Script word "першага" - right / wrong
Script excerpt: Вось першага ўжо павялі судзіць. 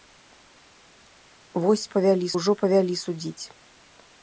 wrong